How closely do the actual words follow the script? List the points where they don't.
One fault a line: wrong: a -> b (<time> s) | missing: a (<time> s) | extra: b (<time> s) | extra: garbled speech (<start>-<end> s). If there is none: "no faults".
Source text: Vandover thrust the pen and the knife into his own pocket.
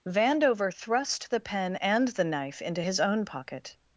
no faults